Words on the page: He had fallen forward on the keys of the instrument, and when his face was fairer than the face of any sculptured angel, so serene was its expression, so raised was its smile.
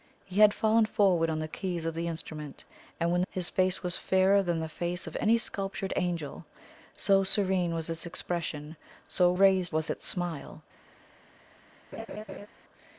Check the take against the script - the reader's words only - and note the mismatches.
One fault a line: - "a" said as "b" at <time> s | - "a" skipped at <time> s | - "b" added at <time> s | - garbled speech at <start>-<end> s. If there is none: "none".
none